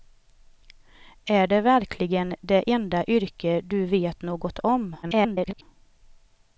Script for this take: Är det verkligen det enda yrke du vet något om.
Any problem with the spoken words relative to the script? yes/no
yes